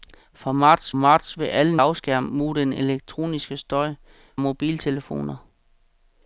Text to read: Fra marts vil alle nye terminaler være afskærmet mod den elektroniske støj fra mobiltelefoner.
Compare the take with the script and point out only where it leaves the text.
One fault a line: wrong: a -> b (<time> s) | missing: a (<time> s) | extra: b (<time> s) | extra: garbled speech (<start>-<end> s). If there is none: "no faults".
extra: marts (0.9 s)
missing: nye terminaler være (1.8 s)
missing: fra (3.9 s)